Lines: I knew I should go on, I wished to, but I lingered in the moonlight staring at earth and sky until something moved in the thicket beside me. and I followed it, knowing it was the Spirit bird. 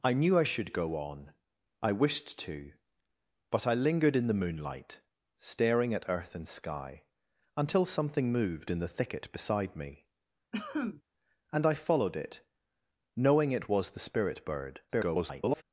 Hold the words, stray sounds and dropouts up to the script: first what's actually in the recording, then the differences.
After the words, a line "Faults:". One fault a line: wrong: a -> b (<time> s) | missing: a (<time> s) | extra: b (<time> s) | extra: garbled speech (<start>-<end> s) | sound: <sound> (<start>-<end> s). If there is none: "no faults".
I knew I should go on, I wished to, but I lingered in the moonlight staring at earth and sky until something moved in the thicket beside me. and I followed it, knowing it was the Spirit bird. [garbled]
Faults:
sound: cough (10.5-11.0 s)
extra: garbled speech (14.9-15.6 s)